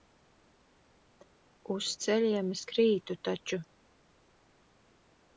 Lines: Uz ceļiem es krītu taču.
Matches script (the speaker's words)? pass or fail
pass